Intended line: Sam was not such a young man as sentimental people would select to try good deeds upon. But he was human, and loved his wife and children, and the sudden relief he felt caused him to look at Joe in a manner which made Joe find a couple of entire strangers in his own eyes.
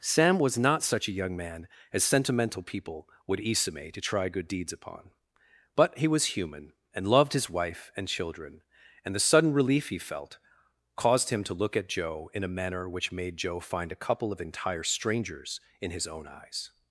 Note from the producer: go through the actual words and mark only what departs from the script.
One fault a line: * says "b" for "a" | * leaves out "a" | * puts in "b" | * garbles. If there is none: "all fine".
* says "isame" for "select"